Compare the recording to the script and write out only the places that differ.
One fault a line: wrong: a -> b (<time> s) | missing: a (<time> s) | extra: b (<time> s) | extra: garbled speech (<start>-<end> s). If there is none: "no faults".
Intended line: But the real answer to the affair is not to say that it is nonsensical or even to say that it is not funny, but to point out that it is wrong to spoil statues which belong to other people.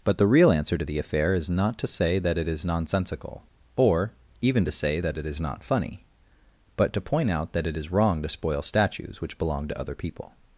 no faults